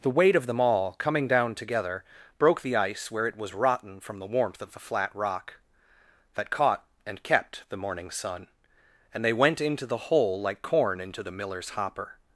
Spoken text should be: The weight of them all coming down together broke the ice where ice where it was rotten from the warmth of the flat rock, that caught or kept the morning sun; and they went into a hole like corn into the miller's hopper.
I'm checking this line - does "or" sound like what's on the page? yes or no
no